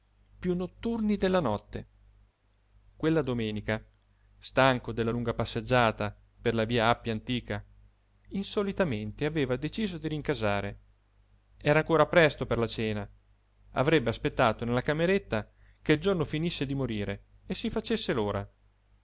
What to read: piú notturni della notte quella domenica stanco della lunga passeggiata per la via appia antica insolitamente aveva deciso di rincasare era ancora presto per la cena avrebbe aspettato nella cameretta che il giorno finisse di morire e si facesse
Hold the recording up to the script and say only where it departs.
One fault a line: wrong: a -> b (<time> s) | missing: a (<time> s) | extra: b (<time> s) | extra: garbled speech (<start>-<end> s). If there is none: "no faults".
no faults